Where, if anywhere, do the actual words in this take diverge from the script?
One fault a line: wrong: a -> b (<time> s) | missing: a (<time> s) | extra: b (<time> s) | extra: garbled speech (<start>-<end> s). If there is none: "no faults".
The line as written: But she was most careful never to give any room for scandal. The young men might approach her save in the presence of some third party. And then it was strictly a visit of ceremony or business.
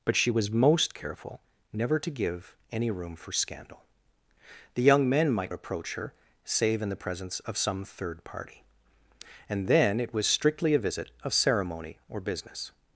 no faults